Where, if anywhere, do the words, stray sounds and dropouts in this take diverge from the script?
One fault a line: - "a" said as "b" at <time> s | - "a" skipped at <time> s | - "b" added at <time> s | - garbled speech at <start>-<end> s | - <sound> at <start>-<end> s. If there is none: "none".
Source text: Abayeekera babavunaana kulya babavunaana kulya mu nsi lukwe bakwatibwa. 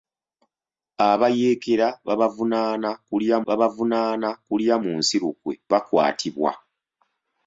none